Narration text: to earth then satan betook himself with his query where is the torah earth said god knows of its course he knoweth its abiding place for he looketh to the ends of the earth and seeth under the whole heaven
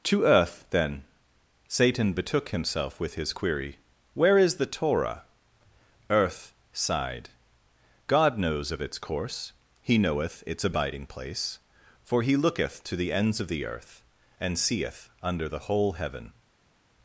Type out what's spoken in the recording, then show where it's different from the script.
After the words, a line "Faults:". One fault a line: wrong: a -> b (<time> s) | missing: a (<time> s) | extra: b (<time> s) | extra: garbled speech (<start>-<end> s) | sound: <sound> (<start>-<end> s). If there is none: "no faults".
to earth then satan betook himself with his query where is the torah earth sighed god knows of its course he knoweth its abiding place for he looketh to the ends of the earth and seeth under the whole heaven
Faults:
wrong: said -> sighed (6.7 s)